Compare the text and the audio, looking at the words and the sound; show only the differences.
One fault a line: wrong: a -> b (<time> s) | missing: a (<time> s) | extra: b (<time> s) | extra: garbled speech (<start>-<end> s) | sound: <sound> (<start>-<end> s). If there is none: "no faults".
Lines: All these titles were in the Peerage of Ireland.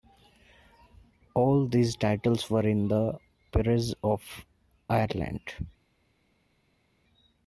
no faults